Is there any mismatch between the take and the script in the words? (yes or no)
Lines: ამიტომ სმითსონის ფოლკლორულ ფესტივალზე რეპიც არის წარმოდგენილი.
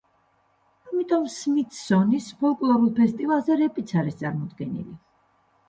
no